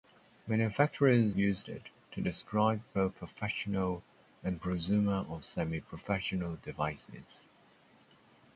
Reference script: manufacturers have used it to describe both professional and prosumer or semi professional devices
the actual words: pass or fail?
fail